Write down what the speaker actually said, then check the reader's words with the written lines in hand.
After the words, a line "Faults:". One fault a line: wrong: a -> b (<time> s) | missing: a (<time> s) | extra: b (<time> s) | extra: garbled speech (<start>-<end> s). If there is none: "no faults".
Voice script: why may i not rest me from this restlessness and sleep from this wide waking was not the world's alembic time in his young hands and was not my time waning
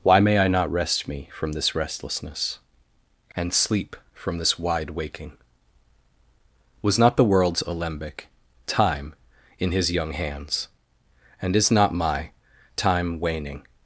why may i not rest me from this restlessness and sleep from this wide waking was not the world's alembic time in his young hands and is not my time waning
Faults:
wrong: was -> is (11.6 s)